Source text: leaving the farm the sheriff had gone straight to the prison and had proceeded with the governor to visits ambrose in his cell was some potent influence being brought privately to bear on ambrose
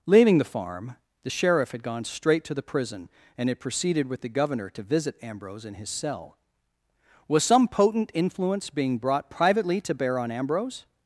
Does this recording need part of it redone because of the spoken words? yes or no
yes